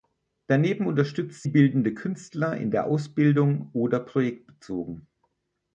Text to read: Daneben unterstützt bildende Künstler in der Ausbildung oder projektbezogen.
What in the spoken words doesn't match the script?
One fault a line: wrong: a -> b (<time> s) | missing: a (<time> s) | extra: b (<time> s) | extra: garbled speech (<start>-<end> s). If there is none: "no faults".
no faults